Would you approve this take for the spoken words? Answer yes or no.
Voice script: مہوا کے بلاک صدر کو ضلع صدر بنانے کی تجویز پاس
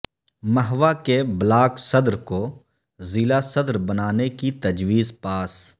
yes